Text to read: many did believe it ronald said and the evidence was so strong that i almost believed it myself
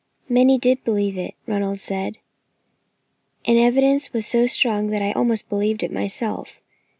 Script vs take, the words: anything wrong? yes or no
no